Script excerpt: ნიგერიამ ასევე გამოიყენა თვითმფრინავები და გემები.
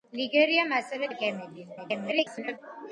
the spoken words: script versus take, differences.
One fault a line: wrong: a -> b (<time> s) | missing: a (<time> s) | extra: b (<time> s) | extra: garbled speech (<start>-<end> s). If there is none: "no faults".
missing: გამოიყენა თვითმფრინავები (1.1 s)
extra: garbled speech (1.8-2.6 s)